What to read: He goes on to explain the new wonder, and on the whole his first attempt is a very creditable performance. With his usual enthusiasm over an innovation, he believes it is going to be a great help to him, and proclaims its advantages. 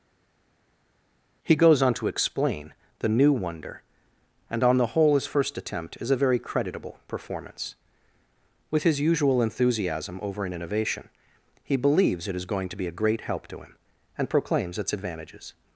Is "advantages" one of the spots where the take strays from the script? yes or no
no